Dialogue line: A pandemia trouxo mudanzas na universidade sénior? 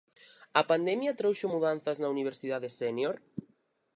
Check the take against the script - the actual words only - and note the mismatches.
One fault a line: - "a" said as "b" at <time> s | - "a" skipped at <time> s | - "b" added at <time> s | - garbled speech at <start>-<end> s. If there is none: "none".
none